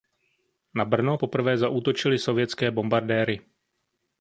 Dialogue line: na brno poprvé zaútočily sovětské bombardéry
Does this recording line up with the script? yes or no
yes